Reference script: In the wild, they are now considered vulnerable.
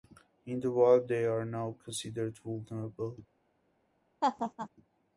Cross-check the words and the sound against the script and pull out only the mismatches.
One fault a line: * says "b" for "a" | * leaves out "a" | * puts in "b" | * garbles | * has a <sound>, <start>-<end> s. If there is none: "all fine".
* has a laugh, 4.2-4.7 s